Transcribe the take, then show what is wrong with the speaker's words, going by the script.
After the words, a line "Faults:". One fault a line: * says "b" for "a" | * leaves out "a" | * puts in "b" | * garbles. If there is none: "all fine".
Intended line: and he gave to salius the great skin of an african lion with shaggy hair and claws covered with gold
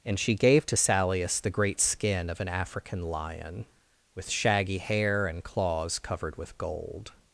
and she gave to salius the great skin of an african lion with shaggy hair and claws covered with gold
Faults:
* says "she" for "he"